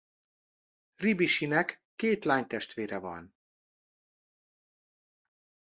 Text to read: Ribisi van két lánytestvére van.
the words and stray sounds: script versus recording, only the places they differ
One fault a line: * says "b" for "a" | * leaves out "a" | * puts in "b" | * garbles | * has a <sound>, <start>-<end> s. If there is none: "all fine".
* says "nek" for "van"